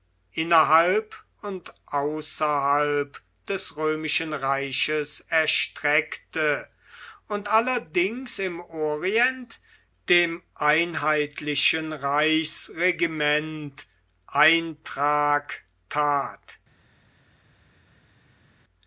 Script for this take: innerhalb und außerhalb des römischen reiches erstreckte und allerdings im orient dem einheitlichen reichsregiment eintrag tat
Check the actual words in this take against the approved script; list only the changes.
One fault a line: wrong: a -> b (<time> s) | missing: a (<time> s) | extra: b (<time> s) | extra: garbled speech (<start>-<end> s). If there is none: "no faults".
no faults